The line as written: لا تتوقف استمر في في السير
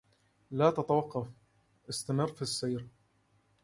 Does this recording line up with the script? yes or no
no